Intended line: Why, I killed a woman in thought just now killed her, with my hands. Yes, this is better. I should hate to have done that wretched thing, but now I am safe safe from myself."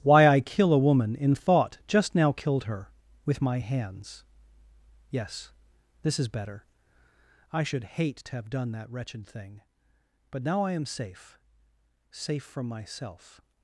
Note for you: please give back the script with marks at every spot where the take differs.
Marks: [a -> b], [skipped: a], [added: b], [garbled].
Why, I [killed -> kill] a woman in thought just now killed her, with my hands. Yes, this is better. I should hate to have done that wretched thing, but now I am safe safe from myself."